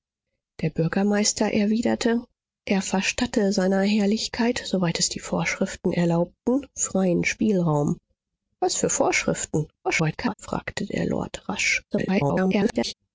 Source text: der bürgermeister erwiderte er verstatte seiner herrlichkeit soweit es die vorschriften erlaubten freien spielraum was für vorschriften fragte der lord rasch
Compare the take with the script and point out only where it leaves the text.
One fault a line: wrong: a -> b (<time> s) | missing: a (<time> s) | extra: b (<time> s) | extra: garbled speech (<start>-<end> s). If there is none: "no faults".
extra: garbled speech (9.8-10.3 s)
extra: garbled speech (11.9-12.9 s)